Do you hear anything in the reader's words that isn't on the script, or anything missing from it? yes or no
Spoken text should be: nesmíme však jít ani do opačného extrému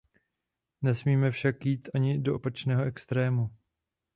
no